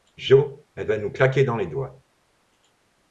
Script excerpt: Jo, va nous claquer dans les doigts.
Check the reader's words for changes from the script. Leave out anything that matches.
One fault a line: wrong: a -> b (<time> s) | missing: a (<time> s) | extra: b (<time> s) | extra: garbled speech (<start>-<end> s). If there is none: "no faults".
extra: elle (0.8 s)